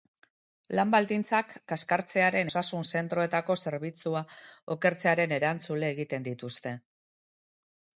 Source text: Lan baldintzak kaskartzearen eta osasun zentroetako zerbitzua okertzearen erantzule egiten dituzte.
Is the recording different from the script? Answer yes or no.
yes